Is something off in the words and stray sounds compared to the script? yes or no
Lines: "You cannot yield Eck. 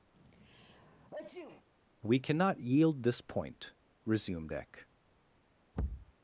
yes